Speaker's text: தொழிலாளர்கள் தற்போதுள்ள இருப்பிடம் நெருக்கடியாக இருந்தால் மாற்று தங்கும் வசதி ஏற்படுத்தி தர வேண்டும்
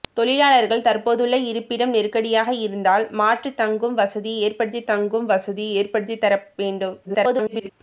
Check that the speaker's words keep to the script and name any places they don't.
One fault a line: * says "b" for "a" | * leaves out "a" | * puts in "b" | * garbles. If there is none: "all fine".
* puts in "தங்கும் வசதி ஏற்படுத்தி"
* garbles